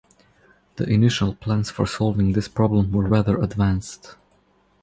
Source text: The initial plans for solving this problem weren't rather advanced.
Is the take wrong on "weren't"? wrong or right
wrong